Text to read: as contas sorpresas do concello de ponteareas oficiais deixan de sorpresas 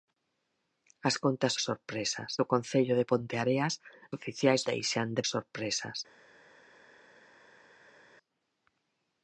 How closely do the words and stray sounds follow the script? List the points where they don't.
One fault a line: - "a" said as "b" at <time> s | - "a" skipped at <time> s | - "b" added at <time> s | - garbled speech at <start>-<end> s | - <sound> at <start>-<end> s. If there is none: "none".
none